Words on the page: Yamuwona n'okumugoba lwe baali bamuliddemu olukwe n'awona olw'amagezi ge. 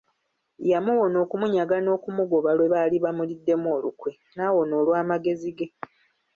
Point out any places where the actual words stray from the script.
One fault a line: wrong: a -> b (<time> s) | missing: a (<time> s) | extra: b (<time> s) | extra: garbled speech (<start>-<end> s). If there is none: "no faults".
extra: okumunyaga (1.2 s)